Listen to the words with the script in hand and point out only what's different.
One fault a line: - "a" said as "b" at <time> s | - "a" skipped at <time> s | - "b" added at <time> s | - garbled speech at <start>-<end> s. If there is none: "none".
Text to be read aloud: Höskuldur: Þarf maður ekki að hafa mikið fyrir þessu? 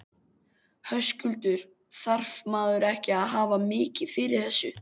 none